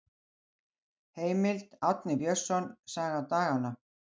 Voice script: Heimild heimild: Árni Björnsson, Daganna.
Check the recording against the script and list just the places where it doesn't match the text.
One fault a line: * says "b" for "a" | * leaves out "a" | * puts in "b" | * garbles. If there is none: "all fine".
* leaves out "heimild"
* puts in "Saga"